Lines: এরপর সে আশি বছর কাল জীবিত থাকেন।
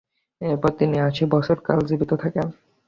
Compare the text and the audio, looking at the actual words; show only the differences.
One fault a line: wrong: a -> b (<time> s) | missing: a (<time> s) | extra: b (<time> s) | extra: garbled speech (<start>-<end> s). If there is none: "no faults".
wrong: সে -> তিনি (0.8 s)